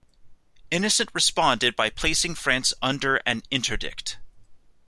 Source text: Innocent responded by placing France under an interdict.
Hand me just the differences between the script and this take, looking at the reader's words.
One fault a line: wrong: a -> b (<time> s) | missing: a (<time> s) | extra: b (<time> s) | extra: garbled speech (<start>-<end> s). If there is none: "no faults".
no faults